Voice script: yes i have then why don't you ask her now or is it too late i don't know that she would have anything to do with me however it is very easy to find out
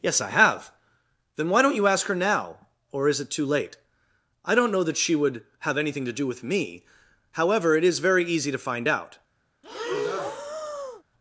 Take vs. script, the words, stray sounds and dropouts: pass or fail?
fail